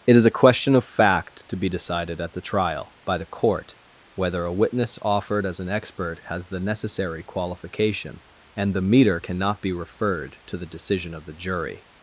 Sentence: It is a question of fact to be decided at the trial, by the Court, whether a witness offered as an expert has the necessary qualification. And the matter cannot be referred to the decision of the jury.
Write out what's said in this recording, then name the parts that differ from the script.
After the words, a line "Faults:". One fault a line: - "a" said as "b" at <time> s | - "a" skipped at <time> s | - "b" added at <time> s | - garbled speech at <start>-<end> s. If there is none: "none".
It is a question of fact to be decided at the trial, by the Court, whether a witness offered as an expert has the necessary qualification. And the meter cannot be referred to the decision of the jury.
Faults:
- "matter" said as "meter" at 8.8 s